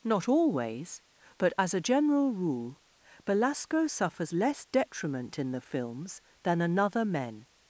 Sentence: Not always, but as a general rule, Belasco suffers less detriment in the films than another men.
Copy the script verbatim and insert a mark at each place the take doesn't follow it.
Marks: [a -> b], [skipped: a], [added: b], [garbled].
Not always, but as a general rule, Belasco suffers less detriment in the films than another men.